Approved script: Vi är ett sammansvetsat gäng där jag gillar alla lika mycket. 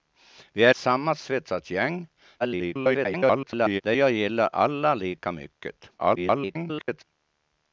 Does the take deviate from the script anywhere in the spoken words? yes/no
yes